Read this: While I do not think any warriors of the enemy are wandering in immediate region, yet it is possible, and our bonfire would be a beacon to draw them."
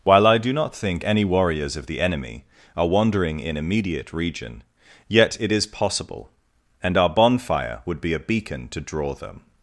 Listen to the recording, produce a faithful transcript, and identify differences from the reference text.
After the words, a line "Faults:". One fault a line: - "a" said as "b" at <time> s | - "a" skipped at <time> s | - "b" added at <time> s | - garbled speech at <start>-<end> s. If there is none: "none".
While I do not think any warriors of the enemy are wandering in immediate region, yet it is possible, and our bonfire would be a beacon to draw them."
Faults:
none